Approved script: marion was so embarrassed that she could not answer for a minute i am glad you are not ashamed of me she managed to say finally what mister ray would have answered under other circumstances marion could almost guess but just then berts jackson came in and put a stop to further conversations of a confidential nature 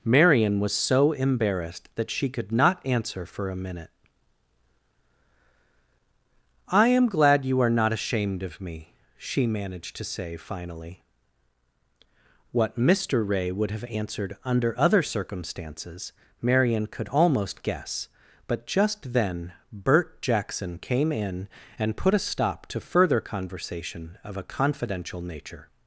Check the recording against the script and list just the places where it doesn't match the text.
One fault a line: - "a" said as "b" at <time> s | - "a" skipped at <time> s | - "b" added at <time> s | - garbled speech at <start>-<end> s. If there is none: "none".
- "berts" said as "bert" at 19.7 s
- "conversations" said as "conversation" at 23.2 s